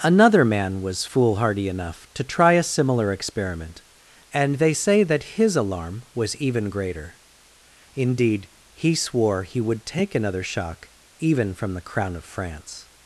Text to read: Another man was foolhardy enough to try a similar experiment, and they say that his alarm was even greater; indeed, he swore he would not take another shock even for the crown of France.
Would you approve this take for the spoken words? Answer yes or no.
no